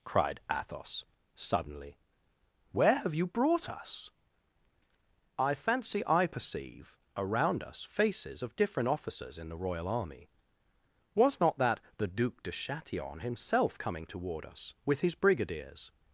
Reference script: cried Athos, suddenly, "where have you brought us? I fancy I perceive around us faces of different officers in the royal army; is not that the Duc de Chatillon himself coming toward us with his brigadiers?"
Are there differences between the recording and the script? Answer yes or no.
yes